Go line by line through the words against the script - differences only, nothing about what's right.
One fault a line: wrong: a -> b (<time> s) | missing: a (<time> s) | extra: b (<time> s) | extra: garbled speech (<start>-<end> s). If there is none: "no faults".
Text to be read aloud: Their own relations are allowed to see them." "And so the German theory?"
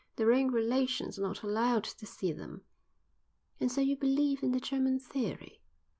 extra: not (1.2 s)
extra: you believe in (3.8 s)